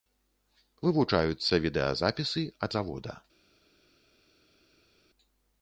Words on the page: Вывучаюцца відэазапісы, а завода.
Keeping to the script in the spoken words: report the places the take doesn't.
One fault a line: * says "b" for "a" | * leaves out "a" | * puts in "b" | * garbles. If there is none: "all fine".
all fine